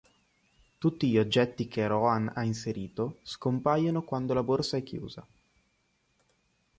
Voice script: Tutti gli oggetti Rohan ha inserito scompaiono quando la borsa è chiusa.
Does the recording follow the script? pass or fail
fail